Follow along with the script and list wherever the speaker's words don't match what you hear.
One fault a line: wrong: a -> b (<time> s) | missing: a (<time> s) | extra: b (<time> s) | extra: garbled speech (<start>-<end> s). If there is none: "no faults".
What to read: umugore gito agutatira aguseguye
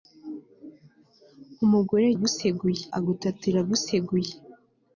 wrong: gito -> aguseguye (2.2 s)